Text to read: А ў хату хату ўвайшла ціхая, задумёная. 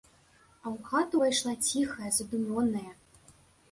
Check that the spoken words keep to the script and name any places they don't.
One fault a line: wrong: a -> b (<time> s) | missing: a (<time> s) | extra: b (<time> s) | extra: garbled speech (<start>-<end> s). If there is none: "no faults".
missing: хату (1.1 s)